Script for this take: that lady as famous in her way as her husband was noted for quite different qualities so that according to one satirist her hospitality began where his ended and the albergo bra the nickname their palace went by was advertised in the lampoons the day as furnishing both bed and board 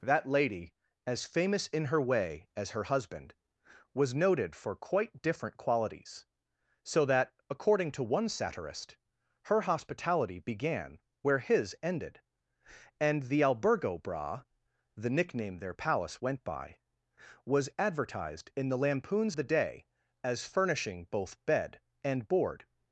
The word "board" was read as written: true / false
true